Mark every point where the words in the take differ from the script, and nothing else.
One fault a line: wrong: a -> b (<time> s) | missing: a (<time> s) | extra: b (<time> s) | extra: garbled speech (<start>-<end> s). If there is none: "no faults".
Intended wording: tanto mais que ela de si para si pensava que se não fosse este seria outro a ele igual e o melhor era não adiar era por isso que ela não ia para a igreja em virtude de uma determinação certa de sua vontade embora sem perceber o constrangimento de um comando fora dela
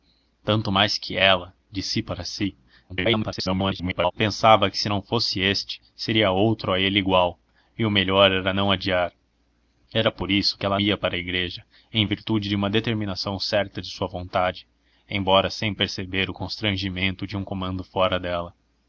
extra: garbled speech (2.9-4.1 s)
missing: não (10.8 s)